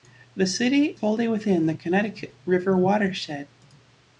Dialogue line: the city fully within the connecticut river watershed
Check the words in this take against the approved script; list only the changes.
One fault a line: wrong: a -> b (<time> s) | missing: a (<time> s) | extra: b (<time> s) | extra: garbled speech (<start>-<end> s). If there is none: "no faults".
no faults